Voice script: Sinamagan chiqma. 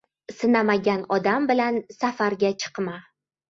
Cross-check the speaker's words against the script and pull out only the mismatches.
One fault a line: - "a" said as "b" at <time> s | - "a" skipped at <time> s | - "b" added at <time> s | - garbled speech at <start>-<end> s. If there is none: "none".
- "odam bilan safarga" added at 1.2 s